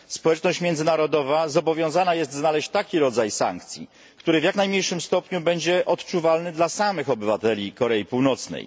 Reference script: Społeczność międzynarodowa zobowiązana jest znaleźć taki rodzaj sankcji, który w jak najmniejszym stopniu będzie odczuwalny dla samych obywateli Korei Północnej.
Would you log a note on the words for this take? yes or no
no